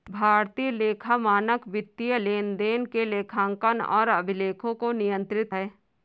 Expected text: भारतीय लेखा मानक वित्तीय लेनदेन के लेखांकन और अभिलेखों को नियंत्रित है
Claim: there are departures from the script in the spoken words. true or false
false